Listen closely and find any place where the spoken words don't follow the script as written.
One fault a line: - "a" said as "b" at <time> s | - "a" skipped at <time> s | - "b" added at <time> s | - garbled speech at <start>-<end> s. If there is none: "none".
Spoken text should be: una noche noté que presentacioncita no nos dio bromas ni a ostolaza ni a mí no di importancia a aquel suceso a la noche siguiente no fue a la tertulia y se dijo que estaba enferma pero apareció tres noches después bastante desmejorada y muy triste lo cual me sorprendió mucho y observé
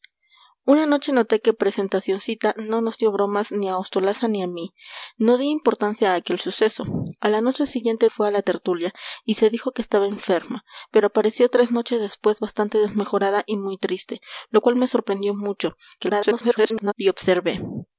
- "no" skipped at 8.1 s
- garbled speech at 16.0-16.9 s